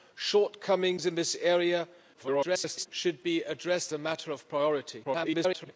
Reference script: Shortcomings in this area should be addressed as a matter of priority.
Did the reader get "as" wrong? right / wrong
wrong